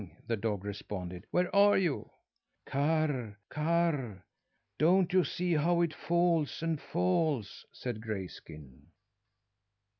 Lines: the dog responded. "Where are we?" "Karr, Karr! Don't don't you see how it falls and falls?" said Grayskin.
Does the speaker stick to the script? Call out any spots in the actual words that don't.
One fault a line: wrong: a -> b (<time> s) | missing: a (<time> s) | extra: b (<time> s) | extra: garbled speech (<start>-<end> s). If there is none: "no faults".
wrong: we -> you (1.8 s)
missing: don't (5.1 s)